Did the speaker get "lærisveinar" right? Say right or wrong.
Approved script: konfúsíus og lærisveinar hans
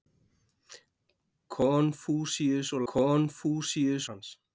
wrong